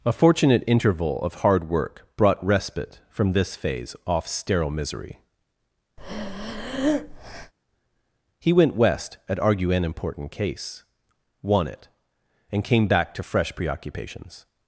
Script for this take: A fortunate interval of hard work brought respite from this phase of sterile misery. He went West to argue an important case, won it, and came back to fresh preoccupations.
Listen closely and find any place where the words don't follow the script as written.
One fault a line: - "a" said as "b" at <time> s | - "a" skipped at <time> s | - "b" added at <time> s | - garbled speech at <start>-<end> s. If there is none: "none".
- "of" said as "off" at 4.1 s
- "to" said as "at" at 9.3 s